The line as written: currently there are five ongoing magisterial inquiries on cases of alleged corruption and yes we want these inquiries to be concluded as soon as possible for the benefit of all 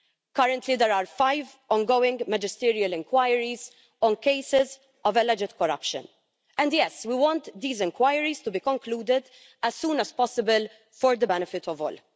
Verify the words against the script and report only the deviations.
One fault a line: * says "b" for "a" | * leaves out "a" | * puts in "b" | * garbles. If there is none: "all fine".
all fine